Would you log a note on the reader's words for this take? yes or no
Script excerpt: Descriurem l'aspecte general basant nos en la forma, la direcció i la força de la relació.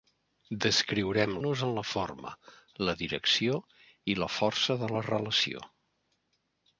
yes